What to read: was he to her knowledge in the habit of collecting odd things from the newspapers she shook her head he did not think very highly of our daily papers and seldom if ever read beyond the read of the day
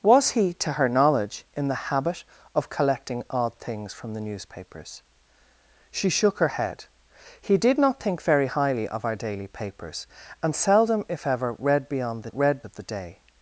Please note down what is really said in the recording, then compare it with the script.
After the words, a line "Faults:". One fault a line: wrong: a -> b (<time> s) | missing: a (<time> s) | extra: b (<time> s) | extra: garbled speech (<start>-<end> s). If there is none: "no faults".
was he to her knowledge in the habit of collecting odd things from the newspapers she shook her head he did not think very highly of our daily papers and seldom if ever read beyond the read of the day
Faults:
no faults